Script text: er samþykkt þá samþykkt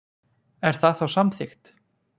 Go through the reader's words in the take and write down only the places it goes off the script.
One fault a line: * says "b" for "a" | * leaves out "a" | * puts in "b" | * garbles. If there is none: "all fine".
* says "það" for "samþykkt"